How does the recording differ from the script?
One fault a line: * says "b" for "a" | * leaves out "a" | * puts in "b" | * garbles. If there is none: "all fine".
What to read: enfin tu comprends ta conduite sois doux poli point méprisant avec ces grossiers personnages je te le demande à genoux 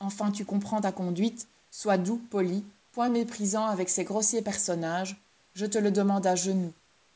all fine